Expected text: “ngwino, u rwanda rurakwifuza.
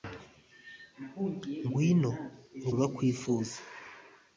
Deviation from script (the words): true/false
true